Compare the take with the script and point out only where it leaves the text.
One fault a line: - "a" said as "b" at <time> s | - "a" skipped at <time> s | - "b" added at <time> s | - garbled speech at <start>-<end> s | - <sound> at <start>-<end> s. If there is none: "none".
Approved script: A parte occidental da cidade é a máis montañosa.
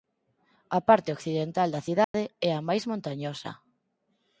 - dropout at 2.0-2.1 s